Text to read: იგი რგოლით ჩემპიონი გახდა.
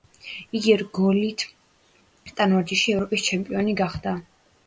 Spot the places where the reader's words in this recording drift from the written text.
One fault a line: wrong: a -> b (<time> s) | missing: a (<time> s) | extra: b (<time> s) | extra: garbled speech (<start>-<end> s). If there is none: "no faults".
extra: ტანვარჯიშში ევროპის (2.4 s)